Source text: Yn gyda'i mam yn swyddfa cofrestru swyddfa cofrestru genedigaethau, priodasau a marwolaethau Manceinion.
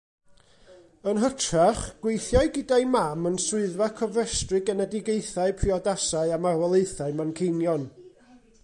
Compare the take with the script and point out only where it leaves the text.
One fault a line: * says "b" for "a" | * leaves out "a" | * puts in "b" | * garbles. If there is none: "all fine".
* puts in "hytrach gweithiai"
* leaves out "swyddfa cofrestru"